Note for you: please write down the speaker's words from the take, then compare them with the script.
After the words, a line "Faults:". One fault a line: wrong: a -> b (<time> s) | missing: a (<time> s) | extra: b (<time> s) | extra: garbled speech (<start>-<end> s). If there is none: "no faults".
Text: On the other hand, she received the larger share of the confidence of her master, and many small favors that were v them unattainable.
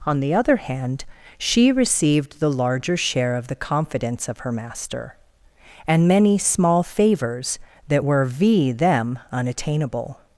On the other hand, she received the larger share of the confidence of her master, and many small favors that were v them unattainable.
Faults:
no faults